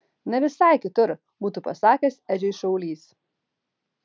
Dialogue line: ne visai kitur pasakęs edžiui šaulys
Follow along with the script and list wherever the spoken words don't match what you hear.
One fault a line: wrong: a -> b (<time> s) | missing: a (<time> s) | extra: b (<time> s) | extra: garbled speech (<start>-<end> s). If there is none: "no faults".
extra: būtų (1.5 s)